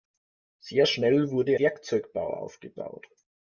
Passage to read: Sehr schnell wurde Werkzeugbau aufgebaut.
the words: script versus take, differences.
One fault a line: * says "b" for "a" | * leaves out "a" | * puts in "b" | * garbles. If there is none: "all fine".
all fine